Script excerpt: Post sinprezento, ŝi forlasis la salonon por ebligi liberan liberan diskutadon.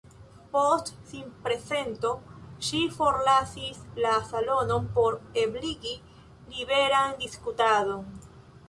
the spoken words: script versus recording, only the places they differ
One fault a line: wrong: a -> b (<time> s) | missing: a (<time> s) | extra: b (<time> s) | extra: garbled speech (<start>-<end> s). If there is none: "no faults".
missing: liberan (7.2 s)